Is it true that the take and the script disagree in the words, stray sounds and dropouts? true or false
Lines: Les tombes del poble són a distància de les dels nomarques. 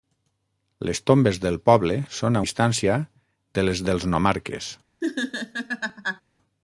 true